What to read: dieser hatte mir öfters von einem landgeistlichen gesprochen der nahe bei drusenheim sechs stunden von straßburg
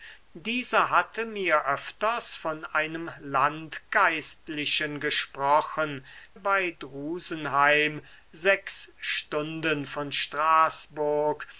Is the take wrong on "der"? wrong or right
wrong